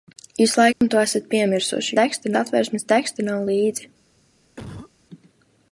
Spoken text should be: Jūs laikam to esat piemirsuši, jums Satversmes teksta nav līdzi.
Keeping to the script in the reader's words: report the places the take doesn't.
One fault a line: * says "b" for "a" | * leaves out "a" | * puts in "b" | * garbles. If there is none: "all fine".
* says "teksta" for "jums"